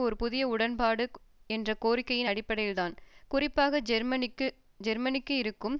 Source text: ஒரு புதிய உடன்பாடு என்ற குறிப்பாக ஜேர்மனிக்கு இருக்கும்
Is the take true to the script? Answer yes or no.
no